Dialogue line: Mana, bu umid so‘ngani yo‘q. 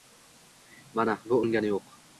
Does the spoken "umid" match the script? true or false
false